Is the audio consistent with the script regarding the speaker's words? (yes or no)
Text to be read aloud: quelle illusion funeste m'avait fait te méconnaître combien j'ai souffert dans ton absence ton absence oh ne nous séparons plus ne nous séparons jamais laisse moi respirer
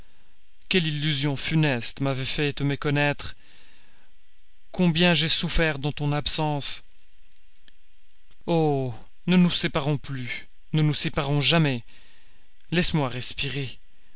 no